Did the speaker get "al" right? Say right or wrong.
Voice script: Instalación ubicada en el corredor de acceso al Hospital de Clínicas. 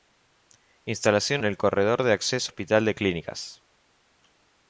wrong